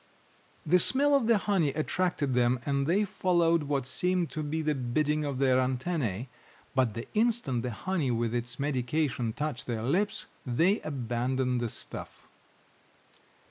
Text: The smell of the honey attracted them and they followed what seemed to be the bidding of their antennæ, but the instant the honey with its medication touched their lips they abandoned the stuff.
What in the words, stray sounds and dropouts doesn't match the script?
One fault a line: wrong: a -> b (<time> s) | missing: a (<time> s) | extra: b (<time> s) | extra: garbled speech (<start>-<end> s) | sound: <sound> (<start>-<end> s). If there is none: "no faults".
no faults